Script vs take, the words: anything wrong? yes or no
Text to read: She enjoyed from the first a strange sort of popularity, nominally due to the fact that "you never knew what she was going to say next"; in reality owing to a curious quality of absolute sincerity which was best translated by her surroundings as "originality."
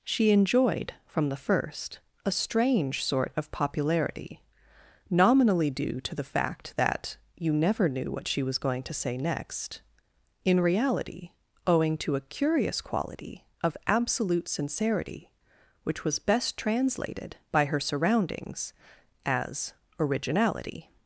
no